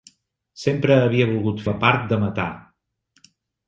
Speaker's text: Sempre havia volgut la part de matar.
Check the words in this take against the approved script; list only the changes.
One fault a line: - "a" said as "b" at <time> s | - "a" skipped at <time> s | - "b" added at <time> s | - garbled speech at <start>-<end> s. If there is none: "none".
none